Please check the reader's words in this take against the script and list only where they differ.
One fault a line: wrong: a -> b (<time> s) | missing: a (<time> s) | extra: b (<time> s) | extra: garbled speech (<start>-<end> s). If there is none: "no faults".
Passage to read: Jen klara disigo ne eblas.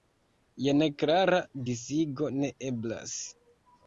no faults